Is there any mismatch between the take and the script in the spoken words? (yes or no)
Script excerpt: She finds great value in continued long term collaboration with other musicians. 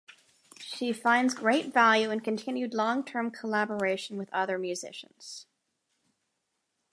no